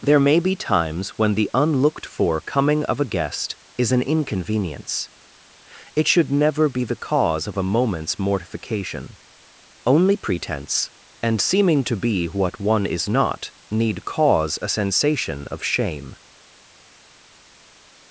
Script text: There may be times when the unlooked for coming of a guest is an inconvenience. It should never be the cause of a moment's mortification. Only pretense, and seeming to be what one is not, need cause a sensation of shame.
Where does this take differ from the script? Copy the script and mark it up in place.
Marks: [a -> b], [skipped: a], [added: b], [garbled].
There may be times when the unlooked for coming of a guest is an inconvenience. It should never be the cause of a moment's mortification. Only pretense, and seeming to be what one is not, need cause a sensation of shame.